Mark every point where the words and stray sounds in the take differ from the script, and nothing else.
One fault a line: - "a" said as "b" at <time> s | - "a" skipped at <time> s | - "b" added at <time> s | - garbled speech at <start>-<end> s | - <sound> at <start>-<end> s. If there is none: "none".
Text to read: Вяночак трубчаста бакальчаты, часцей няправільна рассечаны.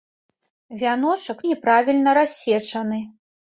- "трубчаста бакальчаты часцей" skipped at 1.4 s